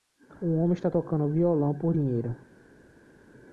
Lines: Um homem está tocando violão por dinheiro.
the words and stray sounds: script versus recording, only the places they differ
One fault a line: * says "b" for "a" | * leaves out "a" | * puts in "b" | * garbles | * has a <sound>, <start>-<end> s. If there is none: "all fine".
all fine